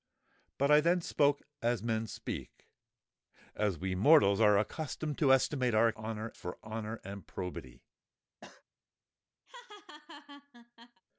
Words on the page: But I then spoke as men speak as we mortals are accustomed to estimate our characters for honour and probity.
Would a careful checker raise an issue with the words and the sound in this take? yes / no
yes